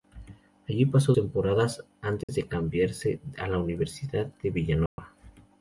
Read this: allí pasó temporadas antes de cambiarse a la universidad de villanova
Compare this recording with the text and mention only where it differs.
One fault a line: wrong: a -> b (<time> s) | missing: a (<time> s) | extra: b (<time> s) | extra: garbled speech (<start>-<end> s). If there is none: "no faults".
no faults